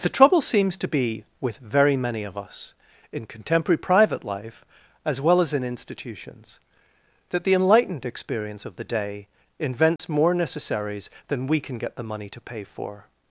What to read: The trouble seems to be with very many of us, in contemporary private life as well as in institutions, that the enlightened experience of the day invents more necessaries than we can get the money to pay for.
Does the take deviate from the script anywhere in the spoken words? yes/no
no